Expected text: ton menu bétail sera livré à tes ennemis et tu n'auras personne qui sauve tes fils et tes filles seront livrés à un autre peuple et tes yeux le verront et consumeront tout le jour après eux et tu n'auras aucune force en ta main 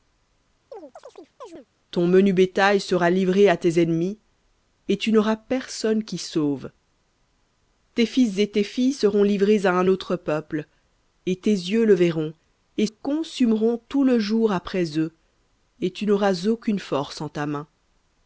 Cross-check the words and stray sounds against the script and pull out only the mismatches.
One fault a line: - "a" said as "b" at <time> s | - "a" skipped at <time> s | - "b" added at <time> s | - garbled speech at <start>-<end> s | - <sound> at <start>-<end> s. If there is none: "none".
- chirp at 0.7-1.7 s